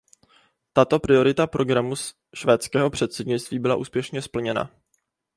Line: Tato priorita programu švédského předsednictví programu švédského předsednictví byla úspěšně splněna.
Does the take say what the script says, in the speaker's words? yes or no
no